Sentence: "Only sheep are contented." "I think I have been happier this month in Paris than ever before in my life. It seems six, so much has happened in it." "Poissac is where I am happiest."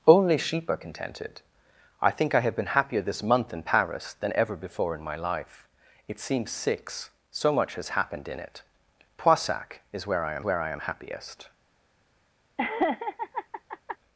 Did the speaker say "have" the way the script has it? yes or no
yes